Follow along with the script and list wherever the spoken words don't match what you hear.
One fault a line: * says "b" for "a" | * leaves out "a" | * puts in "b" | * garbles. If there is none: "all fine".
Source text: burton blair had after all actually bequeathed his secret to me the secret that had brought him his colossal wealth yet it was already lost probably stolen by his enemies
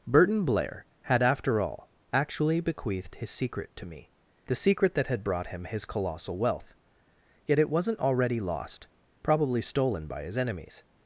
* says "wasn't" for "was"